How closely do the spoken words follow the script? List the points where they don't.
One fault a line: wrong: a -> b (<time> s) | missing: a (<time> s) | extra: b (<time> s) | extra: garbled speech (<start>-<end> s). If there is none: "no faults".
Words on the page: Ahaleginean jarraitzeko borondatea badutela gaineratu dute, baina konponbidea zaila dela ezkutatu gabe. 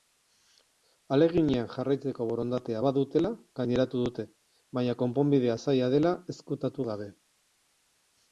no faults